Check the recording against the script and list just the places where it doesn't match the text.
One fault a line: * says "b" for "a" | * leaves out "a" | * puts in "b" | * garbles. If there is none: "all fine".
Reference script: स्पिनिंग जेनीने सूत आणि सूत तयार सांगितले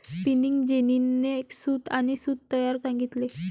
all fine